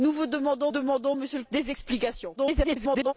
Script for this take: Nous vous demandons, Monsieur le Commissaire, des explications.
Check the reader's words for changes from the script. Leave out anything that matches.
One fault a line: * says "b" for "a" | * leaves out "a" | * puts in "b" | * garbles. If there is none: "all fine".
* puts in "demandons"
* leaves out "Commissaire"
* garbles